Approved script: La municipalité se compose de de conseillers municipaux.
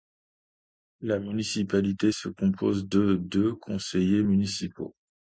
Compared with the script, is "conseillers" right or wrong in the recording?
right